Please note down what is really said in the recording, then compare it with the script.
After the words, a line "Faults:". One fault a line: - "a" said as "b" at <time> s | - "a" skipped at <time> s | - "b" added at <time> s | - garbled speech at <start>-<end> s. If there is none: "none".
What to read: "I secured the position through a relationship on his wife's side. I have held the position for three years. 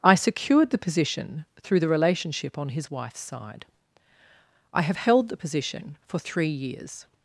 "I secured the position through the relationship on his wife's side. I have held the position for three years.
Faults:
- "a" said as "the" at 1.8 s